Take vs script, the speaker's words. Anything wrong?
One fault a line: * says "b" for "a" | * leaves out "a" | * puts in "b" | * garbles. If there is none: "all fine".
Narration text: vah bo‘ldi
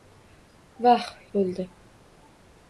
all fine